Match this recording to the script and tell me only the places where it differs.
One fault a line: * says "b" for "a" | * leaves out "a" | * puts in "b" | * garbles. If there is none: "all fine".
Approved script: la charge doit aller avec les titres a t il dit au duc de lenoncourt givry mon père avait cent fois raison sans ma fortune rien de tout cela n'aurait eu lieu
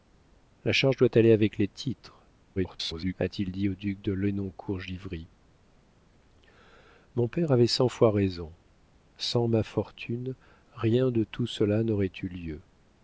* garbles